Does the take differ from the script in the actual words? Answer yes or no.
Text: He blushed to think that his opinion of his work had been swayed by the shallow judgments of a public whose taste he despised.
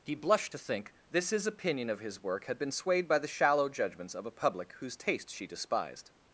yes